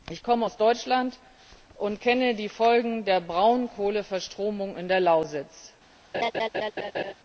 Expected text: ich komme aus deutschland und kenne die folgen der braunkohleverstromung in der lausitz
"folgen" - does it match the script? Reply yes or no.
yes